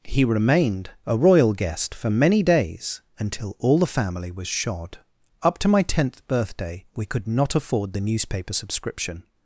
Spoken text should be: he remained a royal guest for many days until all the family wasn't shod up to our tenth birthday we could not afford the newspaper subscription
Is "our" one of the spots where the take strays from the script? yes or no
yes